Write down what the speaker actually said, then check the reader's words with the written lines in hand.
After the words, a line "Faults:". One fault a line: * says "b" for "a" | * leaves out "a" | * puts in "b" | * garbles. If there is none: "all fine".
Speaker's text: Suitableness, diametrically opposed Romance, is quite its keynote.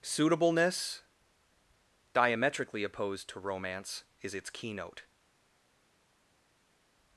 Suitableness, diametrically opposed to Romance, is its keynote.
Faults:
* puts in "to"
* leaves out "quite"